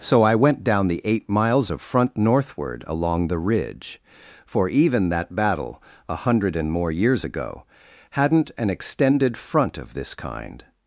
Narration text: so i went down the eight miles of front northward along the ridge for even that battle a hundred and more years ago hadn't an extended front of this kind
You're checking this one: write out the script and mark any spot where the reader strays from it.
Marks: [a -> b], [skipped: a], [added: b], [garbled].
so i went down the eight miles of front northward along the ridge for even that battle a hundred and more years ago hadn't an extended front of this kind